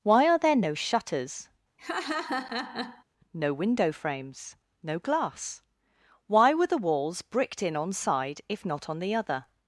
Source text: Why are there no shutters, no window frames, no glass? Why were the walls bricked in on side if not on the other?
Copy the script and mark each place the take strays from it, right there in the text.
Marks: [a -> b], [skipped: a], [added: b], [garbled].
Why are there no shutters, no window frames, no glass? Why were the walls bricked in on side if not on the other?